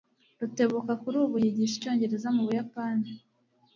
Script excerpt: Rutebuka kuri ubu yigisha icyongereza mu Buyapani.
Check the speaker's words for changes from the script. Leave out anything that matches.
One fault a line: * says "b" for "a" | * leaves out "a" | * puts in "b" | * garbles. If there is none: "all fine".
all fine